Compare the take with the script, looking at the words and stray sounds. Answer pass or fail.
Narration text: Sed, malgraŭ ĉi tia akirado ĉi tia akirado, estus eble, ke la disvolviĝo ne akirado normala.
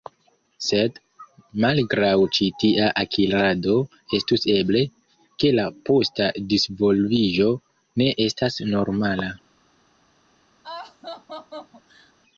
fail